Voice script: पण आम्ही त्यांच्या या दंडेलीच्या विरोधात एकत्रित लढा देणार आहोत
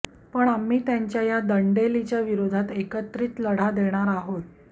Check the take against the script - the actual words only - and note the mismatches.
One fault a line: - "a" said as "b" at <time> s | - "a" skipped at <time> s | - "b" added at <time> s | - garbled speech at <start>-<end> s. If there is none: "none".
none